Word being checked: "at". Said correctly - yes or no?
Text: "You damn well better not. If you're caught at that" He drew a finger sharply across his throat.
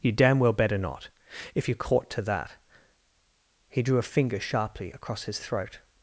no